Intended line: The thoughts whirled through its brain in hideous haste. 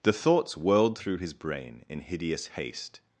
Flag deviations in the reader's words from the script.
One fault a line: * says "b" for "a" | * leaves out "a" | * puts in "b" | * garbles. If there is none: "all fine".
* says "his" for "its"